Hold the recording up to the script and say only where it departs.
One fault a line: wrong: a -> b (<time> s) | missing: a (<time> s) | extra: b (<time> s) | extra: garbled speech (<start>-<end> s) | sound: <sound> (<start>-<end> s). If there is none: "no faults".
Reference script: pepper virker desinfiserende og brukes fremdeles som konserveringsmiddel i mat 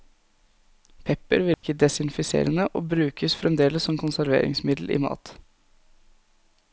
sound: dropout (1.5-1.6 s)